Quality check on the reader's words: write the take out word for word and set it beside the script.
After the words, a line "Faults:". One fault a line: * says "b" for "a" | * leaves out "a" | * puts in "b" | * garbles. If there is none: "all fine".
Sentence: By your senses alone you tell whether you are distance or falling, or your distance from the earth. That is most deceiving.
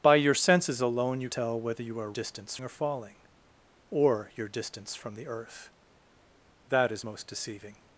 By your senses alone you tell whether you are distance or falling, or your distance from the earth. That is most deceiving.
Faults:
all fine